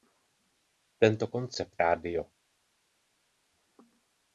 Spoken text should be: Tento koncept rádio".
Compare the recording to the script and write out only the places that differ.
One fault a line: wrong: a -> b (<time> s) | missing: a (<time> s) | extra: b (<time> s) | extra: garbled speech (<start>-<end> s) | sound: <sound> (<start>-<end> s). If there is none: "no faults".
no faults